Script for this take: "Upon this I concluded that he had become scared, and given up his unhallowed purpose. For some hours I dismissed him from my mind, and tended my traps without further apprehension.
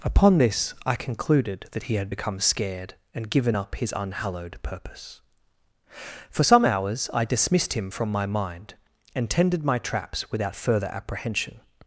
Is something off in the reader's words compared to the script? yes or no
no